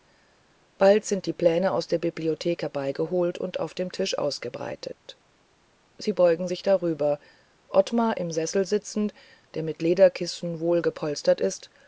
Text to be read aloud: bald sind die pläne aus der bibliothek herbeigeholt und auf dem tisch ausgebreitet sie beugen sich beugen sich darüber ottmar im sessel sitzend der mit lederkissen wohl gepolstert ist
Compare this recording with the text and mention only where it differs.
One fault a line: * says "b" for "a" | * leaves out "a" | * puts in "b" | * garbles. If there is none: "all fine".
* leaves out "beugen sich"